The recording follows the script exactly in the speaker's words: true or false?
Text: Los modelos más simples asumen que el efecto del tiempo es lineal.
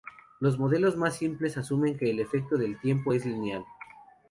true